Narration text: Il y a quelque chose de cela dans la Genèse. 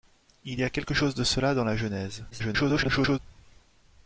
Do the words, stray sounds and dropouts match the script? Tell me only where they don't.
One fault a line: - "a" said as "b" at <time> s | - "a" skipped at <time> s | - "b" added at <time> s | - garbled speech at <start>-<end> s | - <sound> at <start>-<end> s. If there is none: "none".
- garbled speech at 2.3-3.2 s